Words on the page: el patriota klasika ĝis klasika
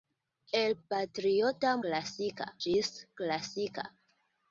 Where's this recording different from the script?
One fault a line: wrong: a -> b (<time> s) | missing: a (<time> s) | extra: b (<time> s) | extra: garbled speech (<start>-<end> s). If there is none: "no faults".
no faults